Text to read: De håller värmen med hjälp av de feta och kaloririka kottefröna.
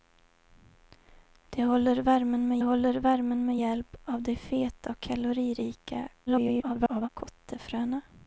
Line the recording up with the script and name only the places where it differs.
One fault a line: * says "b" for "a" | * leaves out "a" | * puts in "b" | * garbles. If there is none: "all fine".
* puts in "håller värmen med"
* garbles